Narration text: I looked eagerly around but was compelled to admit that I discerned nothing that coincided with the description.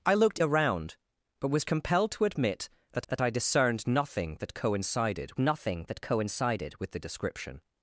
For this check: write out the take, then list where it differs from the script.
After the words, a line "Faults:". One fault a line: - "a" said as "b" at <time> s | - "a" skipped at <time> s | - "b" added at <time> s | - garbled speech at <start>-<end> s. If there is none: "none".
I looked around but was compelled to admit that that I discerned nothing that coincided nothing that coincided with the description.
Faults:
- "eagerly" skipped at 0.4 s
- "that" added at 3.1 s
- "nothing that coincided" added at 5.4 s